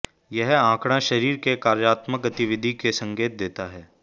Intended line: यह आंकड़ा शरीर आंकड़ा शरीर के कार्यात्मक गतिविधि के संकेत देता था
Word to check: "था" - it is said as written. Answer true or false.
false